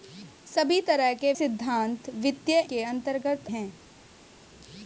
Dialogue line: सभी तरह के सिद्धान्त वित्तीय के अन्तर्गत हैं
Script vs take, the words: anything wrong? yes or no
no